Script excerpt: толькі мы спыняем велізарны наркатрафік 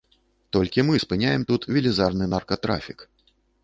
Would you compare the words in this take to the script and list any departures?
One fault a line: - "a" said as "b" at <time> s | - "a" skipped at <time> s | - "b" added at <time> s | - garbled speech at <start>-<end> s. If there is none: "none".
- "тут" added at 1.5 s